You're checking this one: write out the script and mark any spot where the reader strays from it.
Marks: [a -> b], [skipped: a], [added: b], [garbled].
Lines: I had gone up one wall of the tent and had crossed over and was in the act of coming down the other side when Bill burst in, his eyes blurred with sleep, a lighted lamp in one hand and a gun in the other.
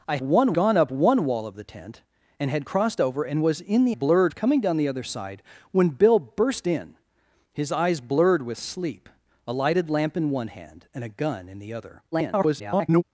I [had -> one] gone up one wall of the tent and had crossed over and was in the [act -> blurred] of coming down the other side when Bill burst in, his eyes blurred with sleep, a lighted lamp in one hand and a gun in the other. [garbled]